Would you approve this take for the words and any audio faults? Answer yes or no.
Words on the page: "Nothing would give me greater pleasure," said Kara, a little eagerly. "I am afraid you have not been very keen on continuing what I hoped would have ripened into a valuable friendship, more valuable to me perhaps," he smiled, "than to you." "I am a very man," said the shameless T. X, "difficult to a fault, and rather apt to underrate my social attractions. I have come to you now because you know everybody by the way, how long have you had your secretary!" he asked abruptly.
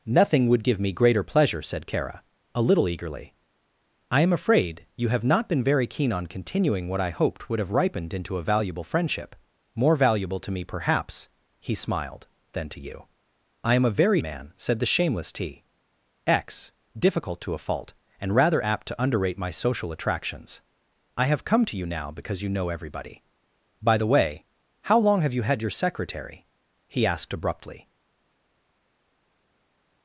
yes